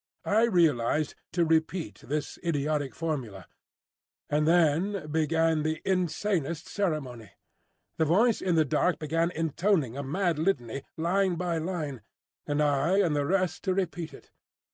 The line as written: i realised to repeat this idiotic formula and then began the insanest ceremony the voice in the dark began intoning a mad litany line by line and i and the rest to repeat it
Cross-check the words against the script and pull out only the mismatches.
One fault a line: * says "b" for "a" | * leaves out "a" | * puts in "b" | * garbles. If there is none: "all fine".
all fine